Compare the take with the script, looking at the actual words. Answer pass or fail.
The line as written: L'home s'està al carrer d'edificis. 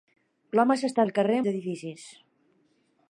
pass